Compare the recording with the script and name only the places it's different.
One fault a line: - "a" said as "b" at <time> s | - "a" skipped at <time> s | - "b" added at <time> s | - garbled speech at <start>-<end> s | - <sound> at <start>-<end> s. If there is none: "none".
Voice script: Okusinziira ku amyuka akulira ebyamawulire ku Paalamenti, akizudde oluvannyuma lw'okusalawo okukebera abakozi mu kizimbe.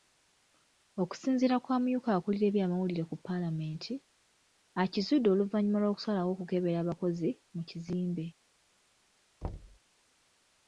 - thud at 9.4-9.8 s